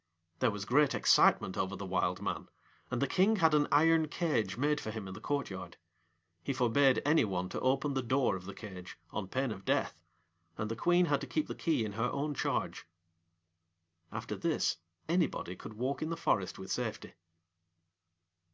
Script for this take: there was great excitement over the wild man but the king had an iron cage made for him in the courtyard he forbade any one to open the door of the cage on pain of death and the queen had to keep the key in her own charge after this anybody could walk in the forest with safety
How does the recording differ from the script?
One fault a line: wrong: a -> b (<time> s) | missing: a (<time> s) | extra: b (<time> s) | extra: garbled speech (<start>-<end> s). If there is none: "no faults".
wrong: but -> and (2.9 s)